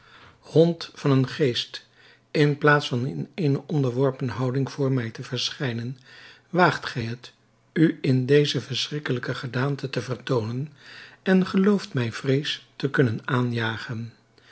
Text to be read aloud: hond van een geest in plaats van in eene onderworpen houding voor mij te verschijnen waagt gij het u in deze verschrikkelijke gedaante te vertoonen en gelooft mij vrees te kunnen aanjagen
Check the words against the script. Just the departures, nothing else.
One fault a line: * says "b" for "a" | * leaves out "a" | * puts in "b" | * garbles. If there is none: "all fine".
all fine